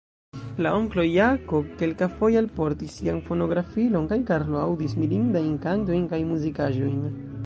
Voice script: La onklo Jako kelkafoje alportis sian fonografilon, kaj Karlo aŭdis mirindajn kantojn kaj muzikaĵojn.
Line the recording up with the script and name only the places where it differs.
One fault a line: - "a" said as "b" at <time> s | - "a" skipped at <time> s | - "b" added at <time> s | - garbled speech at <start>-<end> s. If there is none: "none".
none